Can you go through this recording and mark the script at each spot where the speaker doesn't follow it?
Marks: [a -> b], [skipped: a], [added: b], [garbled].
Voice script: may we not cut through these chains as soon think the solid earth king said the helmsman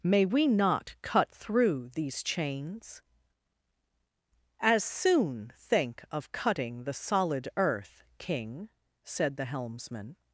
may we not cut through these chains as soon think [added: of cutting] the solid earth king said the helmsman